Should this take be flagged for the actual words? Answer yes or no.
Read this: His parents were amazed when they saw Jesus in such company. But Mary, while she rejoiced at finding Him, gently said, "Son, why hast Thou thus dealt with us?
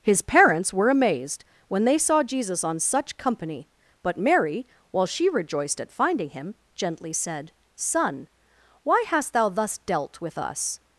yes